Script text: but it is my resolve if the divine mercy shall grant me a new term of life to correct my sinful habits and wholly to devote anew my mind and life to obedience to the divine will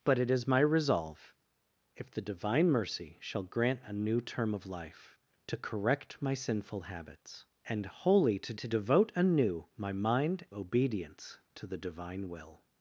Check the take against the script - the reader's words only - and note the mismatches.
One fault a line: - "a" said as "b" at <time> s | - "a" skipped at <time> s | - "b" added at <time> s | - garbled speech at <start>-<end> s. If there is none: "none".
- "me" skipped at 3.8 s
- "to" added at 8.5 s
- "and life to" skipped at 10.5 s